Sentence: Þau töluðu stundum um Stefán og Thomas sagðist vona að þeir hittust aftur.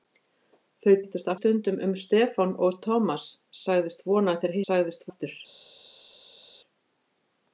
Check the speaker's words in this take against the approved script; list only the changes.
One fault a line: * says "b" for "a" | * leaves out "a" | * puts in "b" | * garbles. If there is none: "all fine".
* says "hittust" for "töluðu"
* says "sagðist" for "hittust"